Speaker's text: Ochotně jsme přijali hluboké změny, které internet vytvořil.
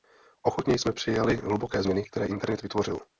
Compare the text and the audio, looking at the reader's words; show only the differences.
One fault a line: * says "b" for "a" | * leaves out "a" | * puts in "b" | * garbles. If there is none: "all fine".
all fine